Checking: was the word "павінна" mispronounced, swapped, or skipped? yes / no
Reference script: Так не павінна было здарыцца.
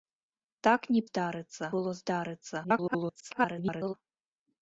yes